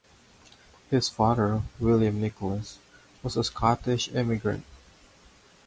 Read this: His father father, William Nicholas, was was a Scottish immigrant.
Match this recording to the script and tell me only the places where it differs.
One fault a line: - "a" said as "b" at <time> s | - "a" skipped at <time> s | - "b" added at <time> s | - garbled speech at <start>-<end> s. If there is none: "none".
- "father" skipped at 1.6 s
- "was" skipped at 3.3 s